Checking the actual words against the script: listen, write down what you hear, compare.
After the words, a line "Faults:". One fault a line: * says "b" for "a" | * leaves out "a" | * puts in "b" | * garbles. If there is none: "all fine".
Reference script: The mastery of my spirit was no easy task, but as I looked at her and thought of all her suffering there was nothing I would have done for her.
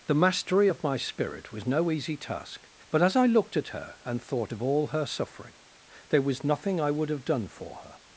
The mastery of my spirit was no easy task, but as I looked at her and thought of all her suffering there was nothing I would have done for her.
Faults:
all fine